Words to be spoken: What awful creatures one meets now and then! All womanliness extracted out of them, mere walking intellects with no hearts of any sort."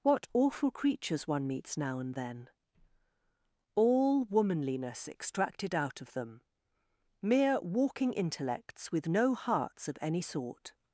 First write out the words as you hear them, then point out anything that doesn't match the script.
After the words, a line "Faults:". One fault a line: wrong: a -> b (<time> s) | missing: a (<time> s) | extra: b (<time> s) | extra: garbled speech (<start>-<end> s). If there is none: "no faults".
What awful creatures one meets now and then! All womanliness extracted out of them, mere walking intellects with no hearts of any sort."
Faults:
no faults